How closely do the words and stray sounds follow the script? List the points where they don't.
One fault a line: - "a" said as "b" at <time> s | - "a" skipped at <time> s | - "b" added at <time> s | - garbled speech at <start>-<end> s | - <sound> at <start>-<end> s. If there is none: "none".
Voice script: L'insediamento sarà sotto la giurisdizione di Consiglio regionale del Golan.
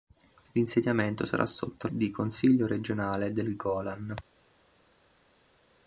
- "la giurisdizione" skipped at 1.9 s